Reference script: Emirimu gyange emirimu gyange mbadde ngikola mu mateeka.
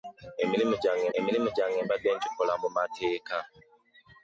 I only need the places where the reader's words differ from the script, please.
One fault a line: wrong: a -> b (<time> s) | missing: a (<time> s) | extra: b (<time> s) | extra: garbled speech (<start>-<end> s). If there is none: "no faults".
no faults